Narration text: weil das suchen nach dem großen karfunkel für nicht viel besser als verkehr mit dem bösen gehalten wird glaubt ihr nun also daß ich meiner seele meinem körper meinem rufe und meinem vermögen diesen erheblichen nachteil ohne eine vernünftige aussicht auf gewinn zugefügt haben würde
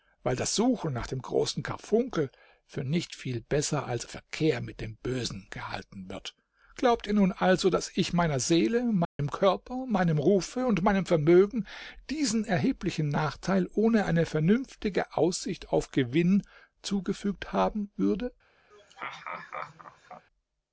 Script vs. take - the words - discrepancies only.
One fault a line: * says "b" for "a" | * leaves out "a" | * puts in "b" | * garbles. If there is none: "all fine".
all fine